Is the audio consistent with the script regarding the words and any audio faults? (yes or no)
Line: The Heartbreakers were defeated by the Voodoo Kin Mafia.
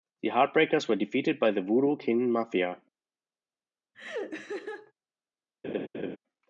no